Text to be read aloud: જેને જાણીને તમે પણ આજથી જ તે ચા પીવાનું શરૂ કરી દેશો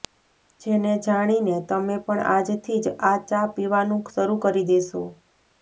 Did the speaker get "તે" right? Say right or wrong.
wrong